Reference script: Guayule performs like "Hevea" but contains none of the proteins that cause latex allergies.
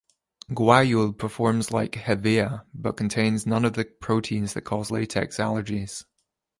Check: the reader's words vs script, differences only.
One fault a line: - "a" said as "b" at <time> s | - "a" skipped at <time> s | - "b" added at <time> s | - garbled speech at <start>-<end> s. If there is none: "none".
none